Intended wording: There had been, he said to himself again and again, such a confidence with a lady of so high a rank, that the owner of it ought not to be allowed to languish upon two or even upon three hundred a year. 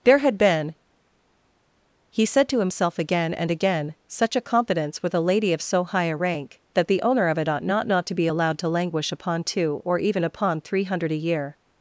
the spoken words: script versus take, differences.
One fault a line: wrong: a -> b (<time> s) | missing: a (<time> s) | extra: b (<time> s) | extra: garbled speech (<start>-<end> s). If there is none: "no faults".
extra: not (7.9 s)